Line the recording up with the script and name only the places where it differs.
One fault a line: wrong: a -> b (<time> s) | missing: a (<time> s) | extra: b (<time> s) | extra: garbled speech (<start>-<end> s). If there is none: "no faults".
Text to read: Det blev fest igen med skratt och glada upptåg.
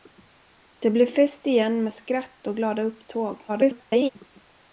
extra: garbled speech (3.5-4.1 s)